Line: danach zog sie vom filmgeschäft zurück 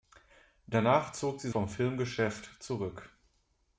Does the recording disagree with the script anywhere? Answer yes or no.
no